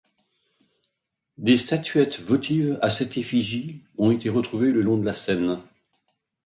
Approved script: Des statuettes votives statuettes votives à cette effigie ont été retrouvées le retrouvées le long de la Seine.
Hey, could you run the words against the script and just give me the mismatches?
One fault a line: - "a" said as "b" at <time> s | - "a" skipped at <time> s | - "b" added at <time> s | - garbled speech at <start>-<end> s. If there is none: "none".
- "statuettes votives" skipped at 2.8 s
- "retrouvées le" skipped at 4.8 s